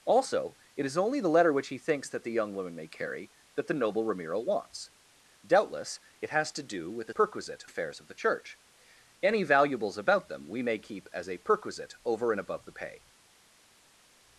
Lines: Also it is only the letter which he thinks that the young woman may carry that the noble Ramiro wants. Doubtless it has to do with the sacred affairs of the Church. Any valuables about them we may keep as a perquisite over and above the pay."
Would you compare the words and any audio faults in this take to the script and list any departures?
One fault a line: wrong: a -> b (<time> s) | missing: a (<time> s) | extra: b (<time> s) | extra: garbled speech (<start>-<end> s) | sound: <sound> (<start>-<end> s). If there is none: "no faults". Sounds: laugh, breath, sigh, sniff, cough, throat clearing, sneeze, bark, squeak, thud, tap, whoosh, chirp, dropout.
wrong: sacred -> perquisite (7.1 s)